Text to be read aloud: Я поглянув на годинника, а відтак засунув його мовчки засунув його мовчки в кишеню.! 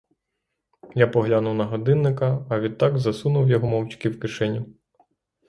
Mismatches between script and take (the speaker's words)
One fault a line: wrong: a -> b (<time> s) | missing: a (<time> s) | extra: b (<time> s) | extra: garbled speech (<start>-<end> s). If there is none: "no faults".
missing: засунув його мовчки (4.1 s)